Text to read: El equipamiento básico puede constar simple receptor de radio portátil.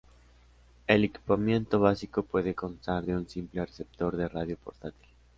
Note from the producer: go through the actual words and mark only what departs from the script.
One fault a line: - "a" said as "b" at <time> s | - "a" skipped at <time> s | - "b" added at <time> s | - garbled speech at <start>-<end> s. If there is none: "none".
- "de un" added at 3.1 s